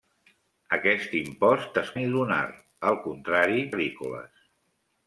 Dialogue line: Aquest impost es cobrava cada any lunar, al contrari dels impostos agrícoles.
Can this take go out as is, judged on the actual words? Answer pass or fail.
fail